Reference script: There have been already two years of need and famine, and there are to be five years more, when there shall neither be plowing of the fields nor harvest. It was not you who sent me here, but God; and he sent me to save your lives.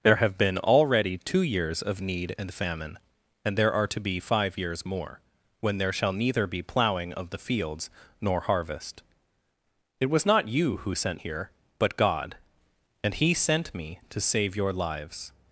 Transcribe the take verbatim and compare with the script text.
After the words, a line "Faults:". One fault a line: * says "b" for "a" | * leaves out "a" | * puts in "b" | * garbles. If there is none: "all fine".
There have been already two years of need and famine, and there are to be five years more, when there shall neither be plowing of the fields nor harvest. It was not you who sent here, but God; and he sent me to save your lives.
Faults:
* leaves out "me"